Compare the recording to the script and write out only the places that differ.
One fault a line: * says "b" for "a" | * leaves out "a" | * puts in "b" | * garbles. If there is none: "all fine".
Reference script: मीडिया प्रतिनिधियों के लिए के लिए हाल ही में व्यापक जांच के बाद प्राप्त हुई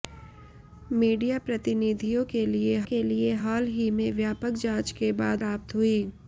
all fine